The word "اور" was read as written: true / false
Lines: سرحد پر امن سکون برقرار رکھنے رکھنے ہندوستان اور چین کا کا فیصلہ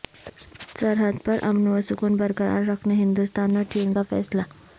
true